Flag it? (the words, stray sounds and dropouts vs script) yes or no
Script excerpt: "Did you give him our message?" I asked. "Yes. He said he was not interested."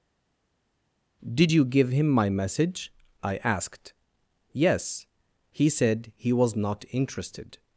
yes